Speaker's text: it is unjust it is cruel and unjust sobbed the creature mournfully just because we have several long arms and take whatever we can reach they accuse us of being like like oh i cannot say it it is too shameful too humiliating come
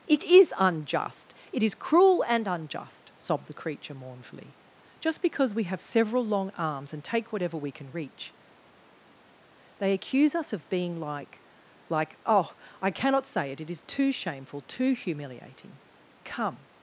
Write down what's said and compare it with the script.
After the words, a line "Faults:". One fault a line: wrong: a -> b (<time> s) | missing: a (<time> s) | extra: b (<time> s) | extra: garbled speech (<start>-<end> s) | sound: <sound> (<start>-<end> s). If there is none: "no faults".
it is unjust it is cruel and unjust sobbed the creature mournfully just because we have several long arms and take whatever we can reach they accuse us of being like like oh i cannot say it it is too shameful too humiliating come
Faults:
no faults